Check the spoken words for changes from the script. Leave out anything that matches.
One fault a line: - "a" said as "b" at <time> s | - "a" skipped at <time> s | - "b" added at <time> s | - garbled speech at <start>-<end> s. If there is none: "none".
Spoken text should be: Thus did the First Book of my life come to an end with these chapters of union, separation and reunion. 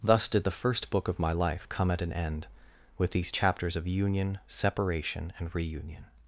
- "to" said as "at" at 1.9 s